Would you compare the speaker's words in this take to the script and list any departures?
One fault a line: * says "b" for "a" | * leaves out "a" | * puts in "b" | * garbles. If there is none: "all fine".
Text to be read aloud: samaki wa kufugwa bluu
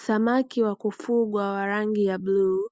* puts in "wa rangi ya"